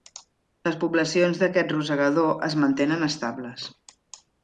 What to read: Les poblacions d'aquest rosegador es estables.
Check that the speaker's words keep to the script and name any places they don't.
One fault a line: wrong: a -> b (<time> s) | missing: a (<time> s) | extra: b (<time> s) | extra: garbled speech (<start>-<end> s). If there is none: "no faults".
extra: mantenen (2.7 s)